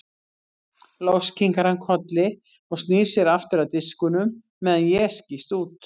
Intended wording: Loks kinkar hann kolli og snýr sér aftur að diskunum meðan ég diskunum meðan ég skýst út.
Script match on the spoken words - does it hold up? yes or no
no